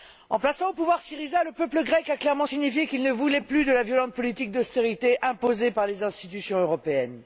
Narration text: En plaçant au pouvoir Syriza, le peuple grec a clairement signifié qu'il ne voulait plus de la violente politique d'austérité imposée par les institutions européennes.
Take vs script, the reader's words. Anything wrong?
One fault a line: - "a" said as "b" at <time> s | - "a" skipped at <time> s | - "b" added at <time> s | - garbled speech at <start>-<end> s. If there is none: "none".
none